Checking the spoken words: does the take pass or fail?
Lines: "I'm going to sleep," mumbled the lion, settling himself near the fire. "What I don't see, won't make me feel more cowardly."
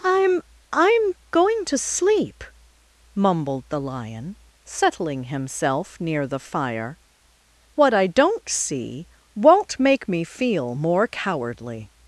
fail